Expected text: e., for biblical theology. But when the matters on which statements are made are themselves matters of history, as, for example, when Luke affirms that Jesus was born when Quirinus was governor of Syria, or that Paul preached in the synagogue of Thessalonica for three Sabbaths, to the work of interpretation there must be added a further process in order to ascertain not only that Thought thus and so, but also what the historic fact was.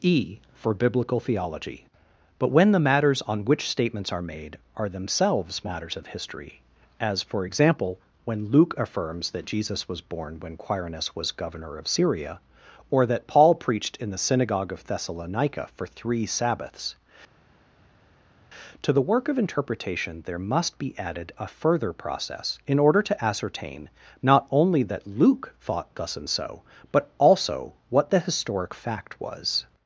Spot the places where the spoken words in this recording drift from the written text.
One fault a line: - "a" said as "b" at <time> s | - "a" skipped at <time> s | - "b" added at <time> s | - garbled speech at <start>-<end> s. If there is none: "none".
- "Luke" added at 25.1 s